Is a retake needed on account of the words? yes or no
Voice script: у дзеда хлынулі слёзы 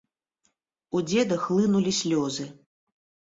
no